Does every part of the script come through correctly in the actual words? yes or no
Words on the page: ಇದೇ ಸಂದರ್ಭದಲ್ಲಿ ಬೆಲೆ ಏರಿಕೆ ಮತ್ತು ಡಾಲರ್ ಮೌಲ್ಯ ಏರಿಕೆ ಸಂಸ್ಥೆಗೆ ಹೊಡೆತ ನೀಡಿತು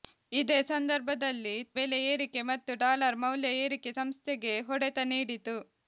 yes